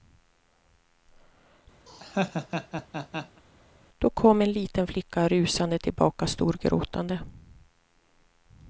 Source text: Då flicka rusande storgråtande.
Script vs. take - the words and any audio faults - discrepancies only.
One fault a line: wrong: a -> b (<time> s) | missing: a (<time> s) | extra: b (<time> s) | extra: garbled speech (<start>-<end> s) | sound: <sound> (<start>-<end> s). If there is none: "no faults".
sound: laugh (1.9-3.4 s)
extra: kom en liten (4.1 s)
extra: tillbaka (5.8 s)